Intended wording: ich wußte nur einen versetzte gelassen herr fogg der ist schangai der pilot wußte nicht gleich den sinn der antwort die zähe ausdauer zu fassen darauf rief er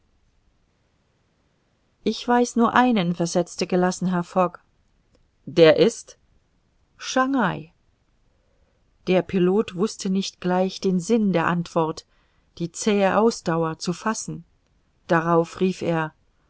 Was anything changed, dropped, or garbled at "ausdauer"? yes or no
no